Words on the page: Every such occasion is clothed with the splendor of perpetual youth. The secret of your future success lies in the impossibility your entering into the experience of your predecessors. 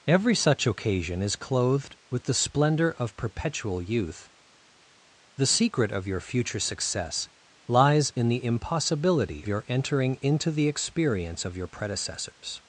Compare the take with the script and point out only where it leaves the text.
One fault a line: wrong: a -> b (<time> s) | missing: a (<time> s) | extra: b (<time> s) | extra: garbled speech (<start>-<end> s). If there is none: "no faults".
no faults